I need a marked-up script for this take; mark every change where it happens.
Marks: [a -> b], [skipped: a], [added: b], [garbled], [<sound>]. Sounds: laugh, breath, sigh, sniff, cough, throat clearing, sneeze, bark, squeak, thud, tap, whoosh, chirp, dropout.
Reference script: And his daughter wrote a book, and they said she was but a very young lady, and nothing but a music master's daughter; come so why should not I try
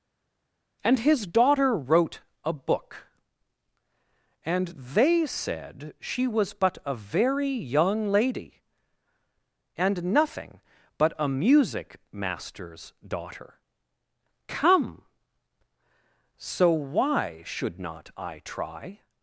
And his daughter wrote a book, and they said she was but a very young lady, and nothing but a music master's daughter; come so why should not I try